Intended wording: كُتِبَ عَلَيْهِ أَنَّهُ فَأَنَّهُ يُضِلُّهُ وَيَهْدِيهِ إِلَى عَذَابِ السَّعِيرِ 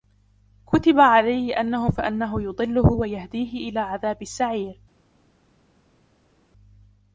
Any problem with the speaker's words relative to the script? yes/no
no